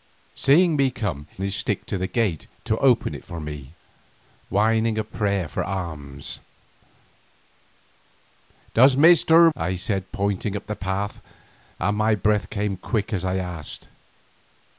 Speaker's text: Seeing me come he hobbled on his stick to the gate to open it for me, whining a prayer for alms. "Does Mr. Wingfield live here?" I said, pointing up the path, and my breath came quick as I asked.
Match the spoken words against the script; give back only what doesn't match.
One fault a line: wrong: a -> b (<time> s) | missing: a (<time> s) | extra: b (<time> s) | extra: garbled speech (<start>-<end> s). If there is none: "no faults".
missing: he hobbled on (1.3 s)
missing: Wingfield live here (9.5 s)